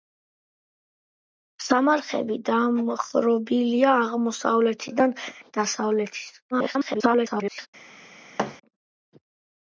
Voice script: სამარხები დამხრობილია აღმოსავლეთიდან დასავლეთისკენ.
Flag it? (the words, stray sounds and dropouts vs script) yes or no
yes